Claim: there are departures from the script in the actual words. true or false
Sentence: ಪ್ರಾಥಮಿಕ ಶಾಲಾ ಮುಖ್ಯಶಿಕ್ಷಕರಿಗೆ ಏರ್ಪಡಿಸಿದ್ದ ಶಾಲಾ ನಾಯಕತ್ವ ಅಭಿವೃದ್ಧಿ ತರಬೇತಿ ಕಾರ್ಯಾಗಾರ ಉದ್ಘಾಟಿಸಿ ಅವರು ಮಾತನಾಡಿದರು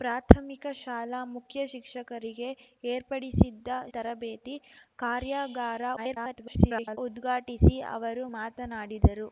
true